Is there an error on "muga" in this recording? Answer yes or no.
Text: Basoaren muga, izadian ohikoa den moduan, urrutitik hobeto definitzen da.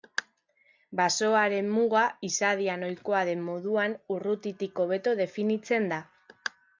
no